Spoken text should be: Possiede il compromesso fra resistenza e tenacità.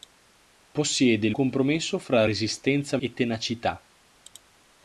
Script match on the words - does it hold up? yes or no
yes